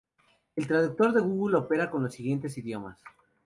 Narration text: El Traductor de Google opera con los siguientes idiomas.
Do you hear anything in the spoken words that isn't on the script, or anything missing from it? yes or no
no